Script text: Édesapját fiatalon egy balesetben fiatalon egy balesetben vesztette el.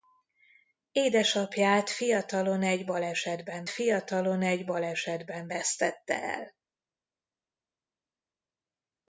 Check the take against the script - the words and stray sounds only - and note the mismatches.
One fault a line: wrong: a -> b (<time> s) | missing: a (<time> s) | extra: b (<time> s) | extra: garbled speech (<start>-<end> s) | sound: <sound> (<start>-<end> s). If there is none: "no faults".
no faults